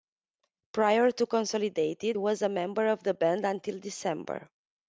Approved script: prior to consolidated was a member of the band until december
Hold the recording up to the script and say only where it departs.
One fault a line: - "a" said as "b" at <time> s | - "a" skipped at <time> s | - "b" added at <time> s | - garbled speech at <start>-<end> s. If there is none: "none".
none